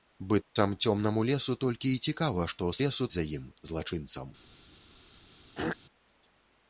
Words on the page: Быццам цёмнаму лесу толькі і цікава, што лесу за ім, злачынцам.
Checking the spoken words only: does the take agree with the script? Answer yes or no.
yes